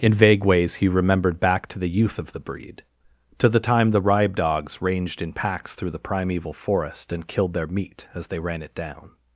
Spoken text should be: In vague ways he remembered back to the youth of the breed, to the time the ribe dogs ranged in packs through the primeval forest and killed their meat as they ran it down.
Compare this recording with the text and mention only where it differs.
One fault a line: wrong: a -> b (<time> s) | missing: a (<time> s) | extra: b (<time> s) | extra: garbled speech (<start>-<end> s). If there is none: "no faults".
no faults